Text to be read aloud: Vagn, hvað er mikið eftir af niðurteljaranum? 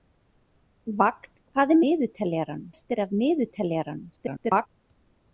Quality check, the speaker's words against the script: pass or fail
fail